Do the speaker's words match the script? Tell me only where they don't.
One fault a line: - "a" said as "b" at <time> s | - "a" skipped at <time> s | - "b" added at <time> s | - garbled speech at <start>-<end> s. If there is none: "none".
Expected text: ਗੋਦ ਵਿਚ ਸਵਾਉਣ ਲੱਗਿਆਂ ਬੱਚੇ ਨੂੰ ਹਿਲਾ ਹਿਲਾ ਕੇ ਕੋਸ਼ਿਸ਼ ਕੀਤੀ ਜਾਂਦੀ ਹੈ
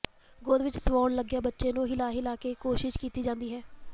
none